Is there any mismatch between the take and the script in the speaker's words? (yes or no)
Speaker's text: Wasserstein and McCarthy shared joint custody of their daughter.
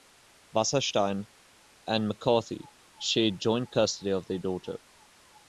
no